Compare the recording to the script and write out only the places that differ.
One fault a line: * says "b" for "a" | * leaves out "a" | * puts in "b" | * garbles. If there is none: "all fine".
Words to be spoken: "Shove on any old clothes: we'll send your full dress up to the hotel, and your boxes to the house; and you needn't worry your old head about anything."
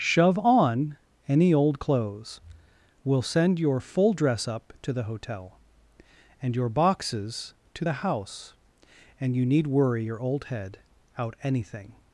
* says "need" for "needn't"
* says "out" for "about"